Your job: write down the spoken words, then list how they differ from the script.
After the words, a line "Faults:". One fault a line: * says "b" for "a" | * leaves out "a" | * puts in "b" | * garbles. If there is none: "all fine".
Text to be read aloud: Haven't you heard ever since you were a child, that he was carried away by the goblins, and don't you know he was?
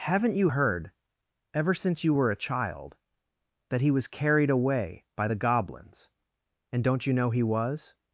Haven't you heard ever since you were a child, that he was carried away by the goblins, and don't you know he was?
Faults:
all fine